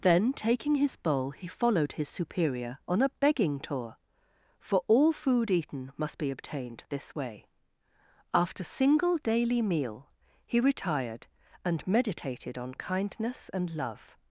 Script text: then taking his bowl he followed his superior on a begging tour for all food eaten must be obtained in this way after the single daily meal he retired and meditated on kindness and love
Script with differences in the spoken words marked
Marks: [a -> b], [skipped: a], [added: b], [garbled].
then taking his bowl he followed his superior on a begging tour for all food eaten must be obtained [skipped: in] this way after [skipped: the] single daily meal he retired and meditated on kindness and love